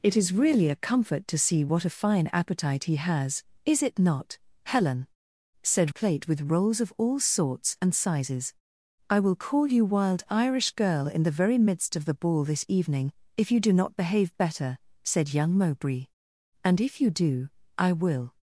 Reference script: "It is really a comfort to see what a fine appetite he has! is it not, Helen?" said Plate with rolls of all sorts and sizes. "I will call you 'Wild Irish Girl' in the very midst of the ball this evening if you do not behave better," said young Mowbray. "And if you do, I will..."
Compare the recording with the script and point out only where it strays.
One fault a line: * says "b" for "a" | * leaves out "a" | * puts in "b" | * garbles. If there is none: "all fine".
all fine